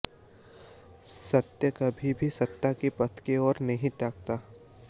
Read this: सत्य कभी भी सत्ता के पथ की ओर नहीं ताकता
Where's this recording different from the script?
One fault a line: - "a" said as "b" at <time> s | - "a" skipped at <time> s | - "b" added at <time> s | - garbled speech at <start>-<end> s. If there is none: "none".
none